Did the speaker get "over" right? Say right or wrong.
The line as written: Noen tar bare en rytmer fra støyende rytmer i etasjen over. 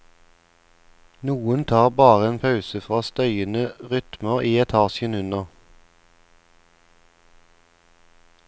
wrong